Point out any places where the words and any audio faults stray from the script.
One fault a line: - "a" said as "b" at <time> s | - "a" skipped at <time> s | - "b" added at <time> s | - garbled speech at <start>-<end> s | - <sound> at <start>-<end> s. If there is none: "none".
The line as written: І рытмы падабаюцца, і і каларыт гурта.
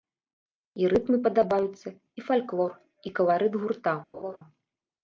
- "фальклор" added at 2.3 s
- laugh at 4.1-4.4 s